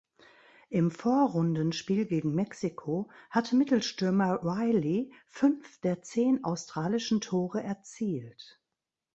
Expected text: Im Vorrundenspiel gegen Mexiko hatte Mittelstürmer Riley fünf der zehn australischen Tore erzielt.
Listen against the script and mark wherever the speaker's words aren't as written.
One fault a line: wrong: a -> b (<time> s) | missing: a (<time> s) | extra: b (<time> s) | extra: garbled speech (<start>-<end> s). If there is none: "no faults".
no faults